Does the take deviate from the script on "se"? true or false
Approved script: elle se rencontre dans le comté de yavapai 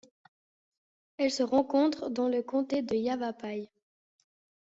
false